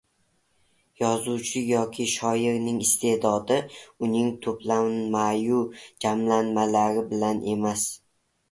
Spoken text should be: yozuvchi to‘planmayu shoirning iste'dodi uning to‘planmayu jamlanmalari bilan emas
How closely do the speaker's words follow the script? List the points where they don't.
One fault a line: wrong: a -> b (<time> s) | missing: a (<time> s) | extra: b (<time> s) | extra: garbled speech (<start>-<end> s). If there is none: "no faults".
wrong: to‘planmayu -> yoki (1.7 s)